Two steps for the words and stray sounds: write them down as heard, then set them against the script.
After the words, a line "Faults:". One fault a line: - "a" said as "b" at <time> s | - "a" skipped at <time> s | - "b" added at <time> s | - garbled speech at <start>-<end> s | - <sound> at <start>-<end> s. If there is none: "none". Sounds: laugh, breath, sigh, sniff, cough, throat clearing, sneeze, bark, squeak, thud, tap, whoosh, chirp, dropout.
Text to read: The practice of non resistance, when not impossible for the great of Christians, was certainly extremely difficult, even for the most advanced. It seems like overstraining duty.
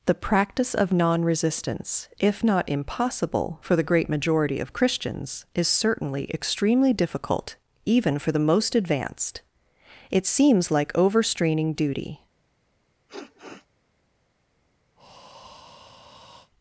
The practice of non resistance, if not impossible for the great majority of Christians, is certainly extremely difficult, even for the most advanced. It seems like overstraining duty.
Faults:
- "when" said as "if" at 2.2 s
- "majority" added at 4.1 s
- "was" said as "is" at 5.5 s
- sniff at 13.1-13.7 s
- breath at 15.0-16.5 s